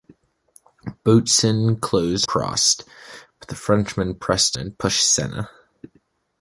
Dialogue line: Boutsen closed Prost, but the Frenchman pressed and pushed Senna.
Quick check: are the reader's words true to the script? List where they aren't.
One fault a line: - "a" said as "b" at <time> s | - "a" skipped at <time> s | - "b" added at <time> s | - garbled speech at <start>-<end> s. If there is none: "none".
none